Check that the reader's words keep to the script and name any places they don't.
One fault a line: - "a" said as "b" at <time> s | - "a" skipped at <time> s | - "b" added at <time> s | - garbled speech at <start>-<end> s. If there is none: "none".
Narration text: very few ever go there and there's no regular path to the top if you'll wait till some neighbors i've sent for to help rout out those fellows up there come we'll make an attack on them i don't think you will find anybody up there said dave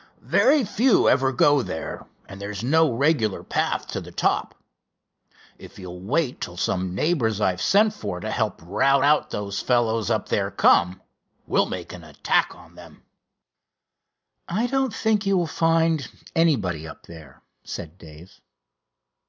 none